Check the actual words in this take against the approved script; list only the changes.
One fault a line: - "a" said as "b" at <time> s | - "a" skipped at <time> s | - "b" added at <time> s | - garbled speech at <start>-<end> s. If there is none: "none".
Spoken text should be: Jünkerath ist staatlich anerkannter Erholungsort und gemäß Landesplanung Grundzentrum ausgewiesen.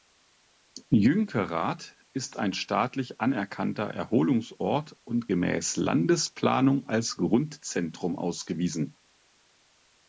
- "ein" added at 2.4 s
- "als" added at 6.9 s